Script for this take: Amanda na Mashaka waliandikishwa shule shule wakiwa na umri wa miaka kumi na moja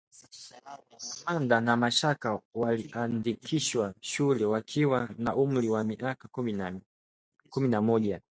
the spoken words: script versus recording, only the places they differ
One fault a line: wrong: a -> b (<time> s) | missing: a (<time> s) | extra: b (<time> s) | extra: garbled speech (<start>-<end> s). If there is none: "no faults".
missing: shule (4.5 s)